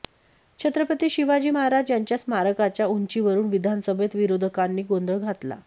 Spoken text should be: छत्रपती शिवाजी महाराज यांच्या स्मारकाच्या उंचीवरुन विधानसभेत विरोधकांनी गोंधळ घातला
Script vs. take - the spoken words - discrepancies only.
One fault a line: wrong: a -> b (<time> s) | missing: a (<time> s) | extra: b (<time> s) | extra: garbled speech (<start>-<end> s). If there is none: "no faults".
no faults